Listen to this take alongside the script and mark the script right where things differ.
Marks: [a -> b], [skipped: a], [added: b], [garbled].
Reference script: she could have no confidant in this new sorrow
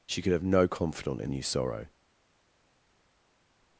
she could have no confidant in [skipped: this] new sorrow